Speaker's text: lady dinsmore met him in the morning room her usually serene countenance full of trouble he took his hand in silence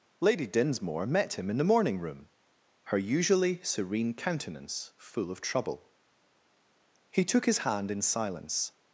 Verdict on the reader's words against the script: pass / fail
pass